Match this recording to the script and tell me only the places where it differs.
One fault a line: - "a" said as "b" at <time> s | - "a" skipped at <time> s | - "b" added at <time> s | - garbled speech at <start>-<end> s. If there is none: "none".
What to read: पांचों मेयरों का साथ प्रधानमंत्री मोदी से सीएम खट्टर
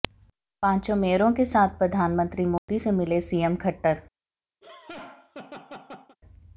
- "का" said as "के" at 1.3 s
- "मिले" added at 2.9 s